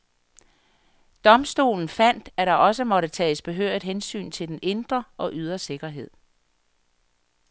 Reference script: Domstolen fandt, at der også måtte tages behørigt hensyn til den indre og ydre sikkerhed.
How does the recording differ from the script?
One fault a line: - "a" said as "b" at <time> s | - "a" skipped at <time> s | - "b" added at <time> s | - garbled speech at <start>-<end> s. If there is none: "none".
none